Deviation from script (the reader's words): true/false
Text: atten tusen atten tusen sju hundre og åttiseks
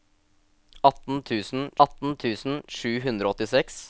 false